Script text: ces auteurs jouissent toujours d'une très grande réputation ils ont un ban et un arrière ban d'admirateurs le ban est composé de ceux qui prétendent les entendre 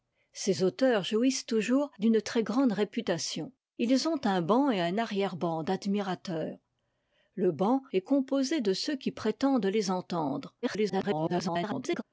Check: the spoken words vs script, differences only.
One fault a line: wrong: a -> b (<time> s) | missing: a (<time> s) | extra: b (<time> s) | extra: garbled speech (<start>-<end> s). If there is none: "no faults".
extra: garbled speech (10.6-12.0 s)